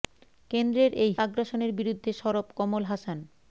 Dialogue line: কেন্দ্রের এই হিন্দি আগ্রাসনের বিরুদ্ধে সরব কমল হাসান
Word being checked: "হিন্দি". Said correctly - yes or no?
no